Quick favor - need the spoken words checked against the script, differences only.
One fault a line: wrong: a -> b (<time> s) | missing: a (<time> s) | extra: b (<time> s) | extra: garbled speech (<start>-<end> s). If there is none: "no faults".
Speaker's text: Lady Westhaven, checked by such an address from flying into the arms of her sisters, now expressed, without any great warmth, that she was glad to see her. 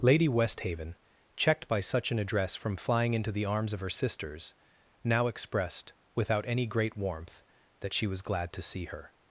no faults